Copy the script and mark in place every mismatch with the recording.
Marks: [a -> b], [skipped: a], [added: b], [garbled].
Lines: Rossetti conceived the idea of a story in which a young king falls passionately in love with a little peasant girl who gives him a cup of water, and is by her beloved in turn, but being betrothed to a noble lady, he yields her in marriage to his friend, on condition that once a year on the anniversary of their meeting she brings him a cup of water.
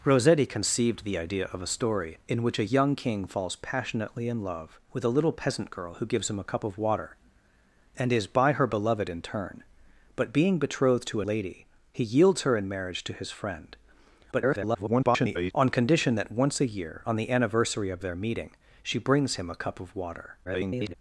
Rossetti conceived the idea of a story in which a young king falls passionately in love with a little peasant girl who gives him a cup of water, and is by her beloved in turn, but being betrothed to a [skipped: noble] lady, he yields her in marriage to his friend, [garbled] on condition that once a year on the anniversary of their meeting she brings him a cup of water. [garbled]